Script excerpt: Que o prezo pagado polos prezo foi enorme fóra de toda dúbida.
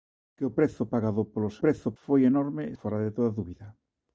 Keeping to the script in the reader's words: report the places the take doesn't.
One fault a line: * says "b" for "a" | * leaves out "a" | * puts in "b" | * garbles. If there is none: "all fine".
all fine